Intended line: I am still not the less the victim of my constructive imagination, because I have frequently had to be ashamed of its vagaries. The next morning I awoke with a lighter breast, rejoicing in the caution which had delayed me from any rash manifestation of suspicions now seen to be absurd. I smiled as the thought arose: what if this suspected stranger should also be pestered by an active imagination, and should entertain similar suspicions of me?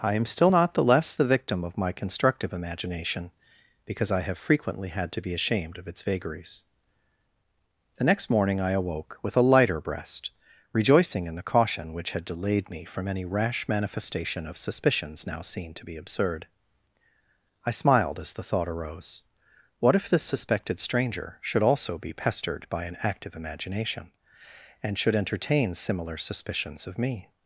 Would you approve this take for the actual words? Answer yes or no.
yes